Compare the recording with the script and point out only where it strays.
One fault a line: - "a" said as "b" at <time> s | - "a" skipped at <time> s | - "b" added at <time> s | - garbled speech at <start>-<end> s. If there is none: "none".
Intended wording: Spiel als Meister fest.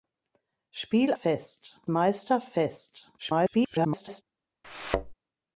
- "als" said as "fest" at 1.1 s
- garbled speech at 3.2-4.2 s